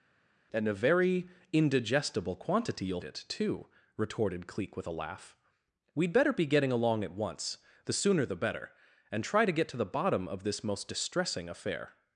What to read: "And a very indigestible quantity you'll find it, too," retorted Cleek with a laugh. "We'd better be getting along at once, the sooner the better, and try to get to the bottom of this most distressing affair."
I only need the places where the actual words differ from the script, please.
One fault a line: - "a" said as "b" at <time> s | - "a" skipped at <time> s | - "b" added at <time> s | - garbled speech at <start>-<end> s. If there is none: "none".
- "find" skipped at 3.0 s